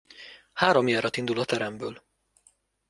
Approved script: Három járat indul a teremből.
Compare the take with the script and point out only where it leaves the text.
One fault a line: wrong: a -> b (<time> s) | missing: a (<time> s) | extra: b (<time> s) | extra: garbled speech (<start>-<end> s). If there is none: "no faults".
no faults